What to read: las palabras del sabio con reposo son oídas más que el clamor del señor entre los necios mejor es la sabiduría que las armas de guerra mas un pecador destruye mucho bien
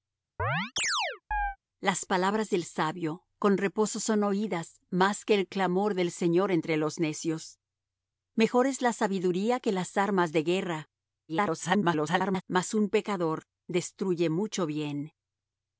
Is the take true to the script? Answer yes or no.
no